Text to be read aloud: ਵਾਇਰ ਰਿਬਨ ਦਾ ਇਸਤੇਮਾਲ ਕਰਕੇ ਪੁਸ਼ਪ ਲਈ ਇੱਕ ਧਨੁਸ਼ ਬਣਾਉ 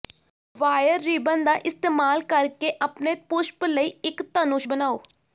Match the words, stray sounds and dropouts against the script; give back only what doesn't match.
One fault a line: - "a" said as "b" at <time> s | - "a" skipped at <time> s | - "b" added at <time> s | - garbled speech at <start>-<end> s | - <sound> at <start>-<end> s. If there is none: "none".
- "ਆਪਣੇ" added at 2.8 s